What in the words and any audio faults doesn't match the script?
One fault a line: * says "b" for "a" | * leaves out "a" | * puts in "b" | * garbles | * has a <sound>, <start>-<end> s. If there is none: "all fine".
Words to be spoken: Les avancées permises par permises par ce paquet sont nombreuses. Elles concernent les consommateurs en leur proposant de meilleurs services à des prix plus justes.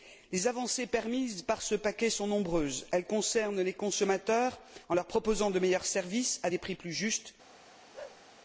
* leaves out "permises par"
* has a bark, 7.9-8.2 s